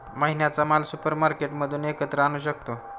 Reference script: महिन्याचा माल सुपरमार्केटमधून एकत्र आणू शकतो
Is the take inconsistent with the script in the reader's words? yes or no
no